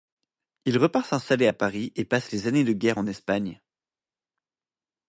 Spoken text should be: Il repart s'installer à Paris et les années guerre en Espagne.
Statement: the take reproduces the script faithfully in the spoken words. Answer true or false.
false